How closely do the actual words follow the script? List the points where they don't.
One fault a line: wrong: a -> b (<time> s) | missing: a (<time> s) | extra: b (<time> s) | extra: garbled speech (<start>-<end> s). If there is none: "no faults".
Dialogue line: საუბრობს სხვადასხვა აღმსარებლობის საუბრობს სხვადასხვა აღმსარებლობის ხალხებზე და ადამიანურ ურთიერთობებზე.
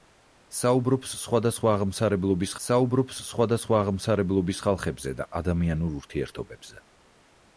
no faults